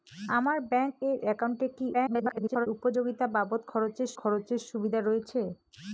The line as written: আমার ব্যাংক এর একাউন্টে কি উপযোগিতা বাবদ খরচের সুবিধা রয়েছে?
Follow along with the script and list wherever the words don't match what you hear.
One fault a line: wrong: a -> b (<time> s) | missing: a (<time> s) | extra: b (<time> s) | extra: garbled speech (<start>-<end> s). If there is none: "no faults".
extra: garbled speech (1.9-2.7 s)
extra: খরচের (4.2 s)